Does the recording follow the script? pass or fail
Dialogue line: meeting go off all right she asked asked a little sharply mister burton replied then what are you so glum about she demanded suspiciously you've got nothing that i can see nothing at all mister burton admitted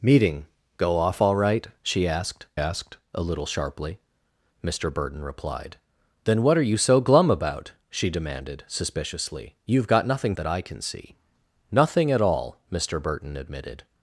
pass